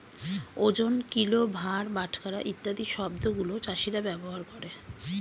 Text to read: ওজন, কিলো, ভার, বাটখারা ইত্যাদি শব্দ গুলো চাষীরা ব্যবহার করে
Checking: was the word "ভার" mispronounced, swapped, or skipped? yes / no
no